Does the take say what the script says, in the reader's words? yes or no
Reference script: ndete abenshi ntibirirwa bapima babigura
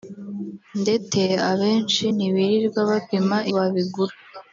yes